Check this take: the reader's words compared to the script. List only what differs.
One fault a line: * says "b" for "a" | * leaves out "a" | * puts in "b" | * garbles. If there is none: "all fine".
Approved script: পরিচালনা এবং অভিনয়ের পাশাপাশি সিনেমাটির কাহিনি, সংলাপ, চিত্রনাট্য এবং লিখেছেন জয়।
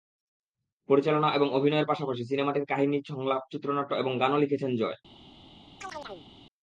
* puts in "গানও"